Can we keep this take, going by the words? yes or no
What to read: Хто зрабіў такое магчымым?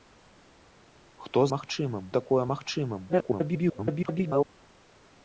no